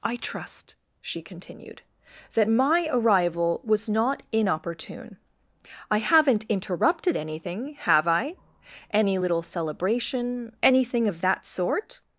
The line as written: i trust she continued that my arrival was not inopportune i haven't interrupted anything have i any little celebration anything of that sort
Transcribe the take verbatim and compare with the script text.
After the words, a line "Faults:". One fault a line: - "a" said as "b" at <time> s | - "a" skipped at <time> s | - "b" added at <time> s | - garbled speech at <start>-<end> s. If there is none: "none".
i trust she continued that my arrival was not inopportune i haven't interrupted anything have i any little celebration anything of that sort
Faults:
none